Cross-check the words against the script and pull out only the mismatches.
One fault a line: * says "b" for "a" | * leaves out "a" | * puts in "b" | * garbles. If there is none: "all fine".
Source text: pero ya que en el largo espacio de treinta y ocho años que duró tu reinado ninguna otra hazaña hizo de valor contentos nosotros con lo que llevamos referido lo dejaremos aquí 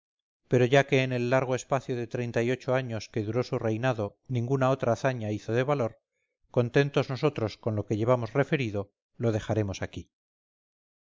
* says "su" for "tu"